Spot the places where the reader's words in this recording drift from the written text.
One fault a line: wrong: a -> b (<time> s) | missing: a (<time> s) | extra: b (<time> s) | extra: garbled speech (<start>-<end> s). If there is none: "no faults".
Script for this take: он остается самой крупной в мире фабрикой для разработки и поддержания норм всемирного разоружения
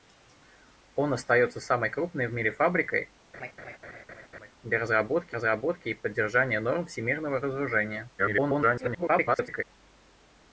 extra: разработки (5.3 s)
extra: garbled speech (8.2-9.6 s)